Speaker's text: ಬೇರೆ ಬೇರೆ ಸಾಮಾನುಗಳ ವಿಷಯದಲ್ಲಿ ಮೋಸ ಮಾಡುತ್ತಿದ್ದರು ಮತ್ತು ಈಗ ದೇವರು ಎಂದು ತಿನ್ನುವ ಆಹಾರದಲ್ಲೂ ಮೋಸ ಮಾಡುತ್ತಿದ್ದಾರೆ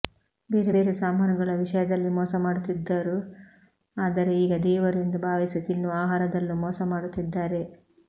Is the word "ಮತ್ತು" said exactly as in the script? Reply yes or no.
no